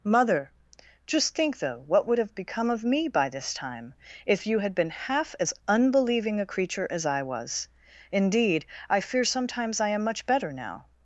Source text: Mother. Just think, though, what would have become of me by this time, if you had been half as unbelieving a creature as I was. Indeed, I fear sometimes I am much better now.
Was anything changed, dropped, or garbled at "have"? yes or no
no